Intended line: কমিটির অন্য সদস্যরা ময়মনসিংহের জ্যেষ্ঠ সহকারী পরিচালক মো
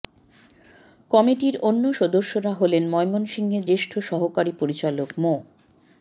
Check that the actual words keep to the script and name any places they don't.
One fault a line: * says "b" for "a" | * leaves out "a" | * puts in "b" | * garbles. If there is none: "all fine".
* puts in "হলেন"